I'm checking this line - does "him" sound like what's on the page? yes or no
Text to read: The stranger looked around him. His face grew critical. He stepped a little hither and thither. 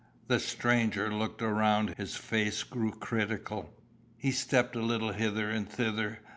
no